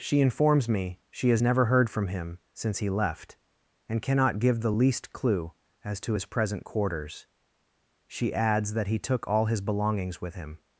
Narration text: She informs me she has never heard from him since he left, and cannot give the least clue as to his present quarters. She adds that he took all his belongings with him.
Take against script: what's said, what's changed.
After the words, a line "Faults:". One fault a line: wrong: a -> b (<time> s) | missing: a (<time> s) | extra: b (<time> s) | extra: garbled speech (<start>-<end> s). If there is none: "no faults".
She informs me she has never heard from him since he left, and cannot give the least clue as to his present quarters. She adds that he took all his belongings with him.
Faults:
no faults